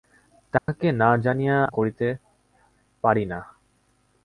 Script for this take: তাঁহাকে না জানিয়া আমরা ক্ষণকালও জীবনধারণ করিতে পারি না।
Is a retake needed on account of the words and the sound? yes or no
yes